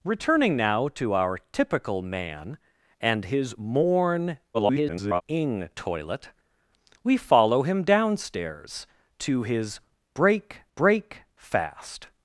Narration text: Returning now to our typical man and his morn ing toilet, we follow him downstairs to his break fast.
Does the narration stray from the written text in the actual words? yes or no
yes